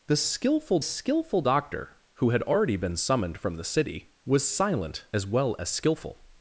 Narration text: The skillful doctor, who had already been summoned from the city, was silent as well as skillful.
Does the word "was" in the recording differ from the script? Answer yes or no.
no